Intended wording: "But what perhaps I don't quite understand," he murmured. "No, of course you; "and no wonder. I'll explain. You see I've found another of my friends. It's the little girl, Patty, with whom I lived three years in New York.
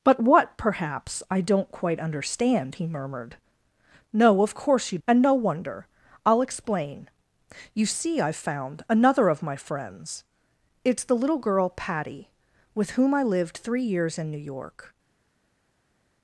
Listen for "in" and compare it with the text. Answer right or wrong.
right